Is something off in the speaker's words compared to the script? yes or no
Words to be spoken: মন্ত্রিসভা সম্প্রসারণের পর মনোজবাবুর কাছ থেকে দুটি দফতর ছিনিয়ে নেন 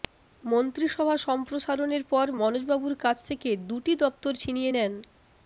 no